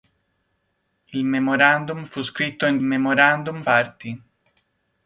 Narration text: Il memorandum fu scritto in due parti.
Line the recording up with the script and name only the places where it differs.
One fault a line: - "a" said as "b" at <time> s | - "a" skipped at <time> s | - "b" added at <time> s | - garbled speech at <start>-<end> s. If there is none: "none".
- "due" said as "memorandum" at 2.8 s